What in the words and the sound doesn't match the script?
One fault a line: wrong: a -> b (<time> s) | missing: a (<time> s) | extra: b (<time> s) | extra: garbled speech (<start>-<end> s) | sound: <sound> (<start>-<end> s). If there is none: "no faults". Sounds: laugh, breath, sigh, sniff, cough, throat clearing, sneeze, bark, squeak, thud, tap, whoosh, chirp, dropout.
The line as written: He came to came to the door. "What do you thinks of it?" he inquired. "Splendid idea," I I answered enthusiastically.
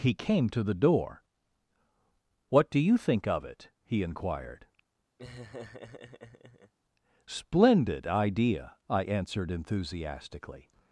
missing: came to (0.6 s)
wrong: thinks -> think (3.0 s)
sound: laugh (5.2-6.7 s)
missing: I (9.0 s)